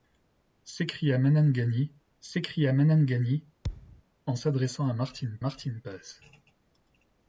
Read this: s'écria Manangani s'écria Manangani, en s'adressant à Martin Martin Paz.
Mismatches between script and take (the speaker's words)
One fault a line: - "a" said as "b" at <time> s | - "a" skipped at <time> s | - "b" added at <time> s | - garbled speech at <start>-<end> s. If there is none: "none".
none